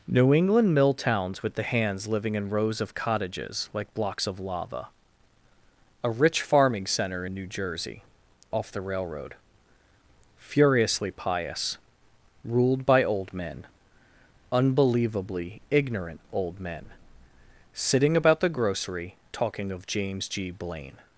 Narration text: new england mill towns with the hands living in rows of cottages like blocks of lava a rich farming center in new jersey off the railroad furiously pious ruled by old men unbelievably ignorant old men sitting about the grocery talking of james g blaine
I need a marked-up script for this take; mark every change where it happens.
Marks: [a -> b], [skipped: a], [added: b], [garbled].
new england mill towns with the hands living in rows of cottages like blocks of lava a rich farming center in new jersey off the railroad furiously pious ruled by old men unbelievably ignorant old men sitting about the grocery talking of james g blaine